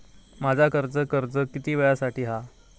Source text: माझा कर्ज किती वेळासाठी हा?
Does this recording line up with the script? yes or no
no